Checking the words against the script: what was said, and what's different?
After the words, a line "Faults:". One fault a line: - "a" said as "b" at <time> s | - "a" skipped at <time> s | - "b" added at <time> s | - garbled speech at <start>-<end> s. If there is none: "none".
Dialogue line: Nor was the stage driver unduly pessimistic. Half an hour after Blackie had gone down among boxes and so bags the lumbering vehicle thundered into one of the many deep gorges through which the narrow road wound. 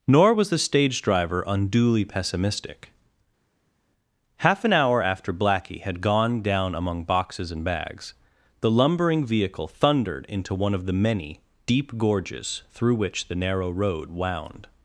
Nor was the stage driver unduly pessimistic. Half an hour after Blackie had gone down among boxes and bags the lumbering vehicle thundered into one of the many deep gorges through which the narrow road wound.
Faults:
- "so" skipped at 7.6 s